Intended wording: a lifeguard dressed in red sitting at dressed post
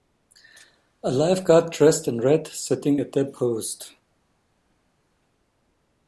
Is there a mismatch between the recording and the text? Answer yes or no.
yes